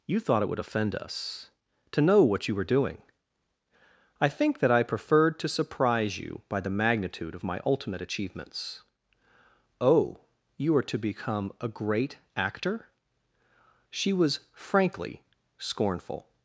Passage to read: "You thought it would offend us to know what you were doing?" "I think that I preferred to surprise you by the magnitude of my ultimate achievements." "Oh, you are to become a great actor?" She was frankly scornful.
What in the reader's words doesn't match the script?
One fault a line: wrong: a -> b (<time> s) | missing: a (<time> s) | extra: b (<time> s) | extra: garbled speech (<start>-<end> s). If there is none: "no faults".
no faults